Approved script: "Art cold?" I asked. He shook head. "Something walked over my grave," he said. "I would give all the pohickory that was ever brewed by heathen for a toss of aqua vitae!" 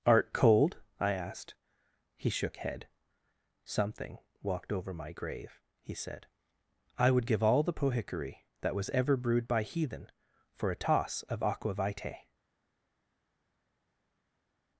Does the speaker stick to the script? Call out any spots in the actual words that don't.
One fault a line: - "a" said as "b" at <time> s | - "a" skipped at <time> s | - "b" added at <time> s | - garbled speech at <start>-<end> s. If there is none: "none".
none